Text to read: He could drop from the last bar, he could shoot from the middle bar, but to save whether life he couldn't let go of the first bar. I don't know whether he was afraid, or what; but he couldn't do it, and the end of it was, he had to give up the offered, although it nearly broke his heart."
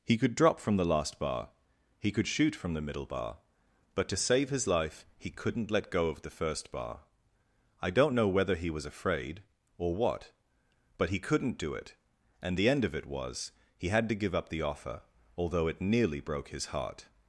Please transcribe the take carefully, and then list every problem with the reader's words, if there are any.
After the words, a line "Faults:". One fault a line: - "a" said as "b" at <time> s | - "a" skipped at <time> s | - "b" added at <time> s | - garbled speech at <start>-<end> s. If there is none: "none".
He could drop from the last bar, he could shoot from the middle bar, but to save his life he couldn't let go of the first bar. I don't know whether he was afraid, or what; but he couldn't do it, and the end of it was, he had to give up the offer, although it nearly broke his heart."
Faults:
- "whether" said as "his" at 4.5 s
- "offered" said as "offer" at 14.6 s